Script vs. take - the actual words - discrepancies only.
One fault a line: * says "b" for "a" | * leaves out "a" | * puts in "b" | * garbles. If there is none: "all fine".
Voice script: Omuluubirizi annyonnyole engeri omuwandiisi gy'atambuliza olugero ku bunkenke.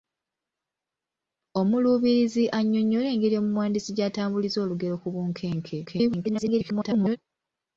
* garbles